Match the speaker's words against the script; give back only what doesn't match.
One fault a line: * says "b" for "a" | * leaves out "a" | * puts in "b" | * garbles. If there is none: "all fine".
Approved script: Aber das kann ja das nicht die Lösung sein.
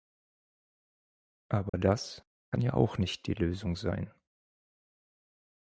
* says "auch" for "das"